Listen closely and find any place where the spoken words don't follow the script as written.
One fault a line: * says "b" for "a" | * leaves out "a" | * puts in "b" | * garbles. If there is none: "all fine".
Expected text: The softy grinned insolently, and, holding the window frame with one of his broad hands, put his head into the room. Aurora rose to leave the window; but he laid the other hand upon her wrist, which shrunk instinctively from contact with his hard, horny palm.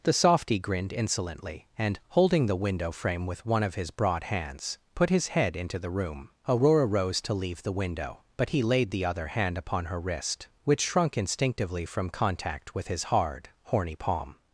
all fine